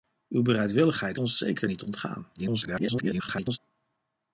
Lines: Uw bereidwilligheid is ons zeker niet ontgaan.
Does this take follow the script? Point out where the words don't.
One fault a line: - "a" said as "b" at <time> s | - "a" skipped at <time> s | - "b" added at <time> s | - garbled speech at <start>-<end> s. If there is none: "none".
- "is" skipped at 1.2 s
- garbled speech at 2.3-3.6 s